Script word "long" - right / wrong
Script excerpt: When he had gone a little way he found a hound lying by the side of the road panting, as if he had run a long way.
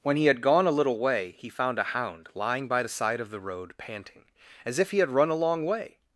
right